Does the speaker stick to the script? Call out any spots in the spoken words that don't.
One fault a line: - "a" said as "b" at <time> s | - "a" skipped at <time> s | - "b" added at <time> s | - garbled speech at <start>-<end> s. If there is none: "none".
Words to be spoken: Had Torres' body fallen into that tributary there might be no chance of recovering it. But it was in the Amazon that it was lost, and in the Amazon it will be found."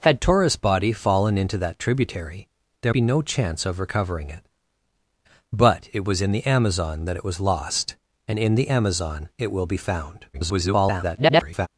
- "might" skipped at 2.9 s
- garbled speech at 10.3-11.7 s